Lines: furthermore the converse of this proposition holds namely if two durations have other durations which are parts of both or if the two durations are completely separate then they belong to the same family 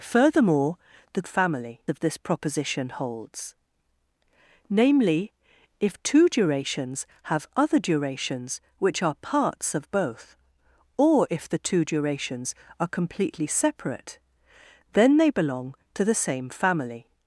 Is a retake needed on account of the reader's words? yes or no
yes